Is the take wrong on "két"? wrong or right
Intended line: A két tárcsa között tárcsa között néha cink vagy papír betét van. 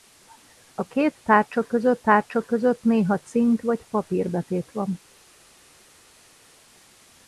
right